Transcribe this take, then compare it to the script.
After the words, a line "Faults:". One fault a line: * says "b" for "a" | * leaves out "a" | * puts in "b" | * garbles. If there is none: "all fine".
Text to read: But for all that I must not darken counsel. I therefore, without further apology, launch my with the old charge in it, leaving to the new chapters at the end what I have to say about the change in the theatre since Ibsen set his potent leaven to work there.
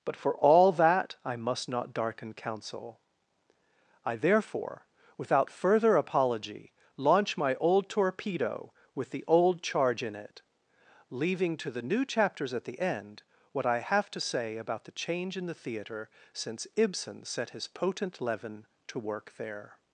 But for all that I must not darken counsel. I therefore, without further apology, launch my old torpedo with the old charge in it, leaving to the new chapters at the end what I have to say about the change in the theatre since Ibsen set his potent leaven to work there.
Faults:
* puts in "old torpedo"